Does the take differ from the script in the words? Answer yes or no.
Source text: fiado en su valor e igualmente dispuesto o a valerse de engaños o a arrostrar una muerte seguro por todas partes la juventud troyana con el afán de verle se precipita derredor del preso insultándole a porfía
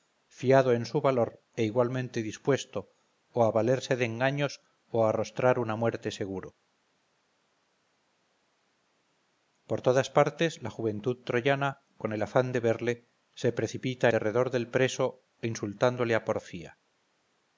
no